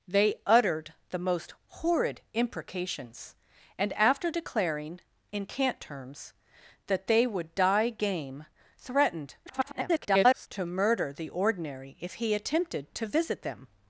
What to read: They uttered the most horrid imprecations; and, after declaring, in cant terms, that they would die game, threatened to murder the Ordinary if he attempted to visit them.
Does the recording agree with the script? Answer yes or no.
no